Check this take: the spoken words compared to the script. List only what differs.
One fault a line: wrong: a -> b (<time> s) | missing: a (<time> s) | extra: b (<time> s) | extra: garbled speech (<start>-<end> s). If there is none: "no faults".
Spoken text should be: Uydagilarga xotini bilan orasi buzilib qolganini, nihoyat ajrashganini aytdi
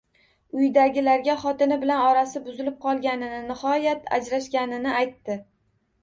no faults